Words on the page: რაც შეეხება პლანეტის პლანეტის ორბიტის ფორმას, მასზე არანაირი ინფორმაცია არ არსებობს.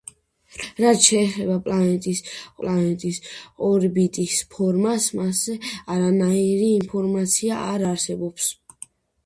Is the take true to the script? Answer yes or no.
yes